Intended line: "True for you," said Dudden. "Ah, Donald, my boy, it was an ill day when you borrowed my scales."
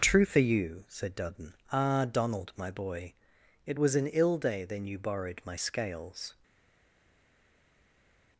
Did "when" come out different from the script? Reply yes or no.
yes